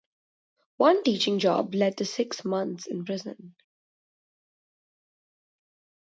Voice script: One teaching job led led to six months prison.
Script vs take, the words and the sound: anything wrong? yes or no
yes